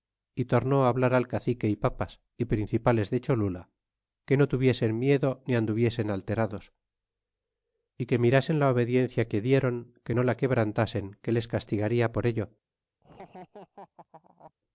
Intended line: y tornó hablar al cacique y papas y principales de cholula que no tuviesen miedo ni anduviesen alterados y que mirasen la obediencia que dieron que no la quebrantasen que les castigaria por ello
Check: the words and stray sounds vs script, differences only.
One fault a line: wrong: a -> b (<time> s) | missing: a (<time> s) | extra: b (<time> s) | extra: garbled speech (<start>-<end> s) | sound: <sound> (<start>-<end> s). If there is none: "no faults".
sound: laugh (13.0-14.5 s)